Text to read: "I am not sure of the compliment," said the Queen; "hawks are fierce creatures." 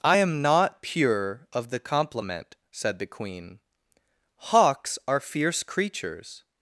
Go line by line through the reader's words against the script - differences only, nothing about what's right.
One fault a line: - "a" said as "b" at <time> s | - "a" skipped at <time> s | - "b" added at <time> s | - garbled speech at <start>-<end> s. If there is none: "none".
- "sure" said as "pure" at 0.8 s